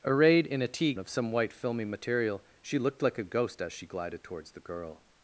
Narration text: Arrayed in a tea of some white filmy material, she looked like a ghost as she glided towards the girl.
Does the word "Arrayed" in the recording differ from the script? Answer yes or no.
no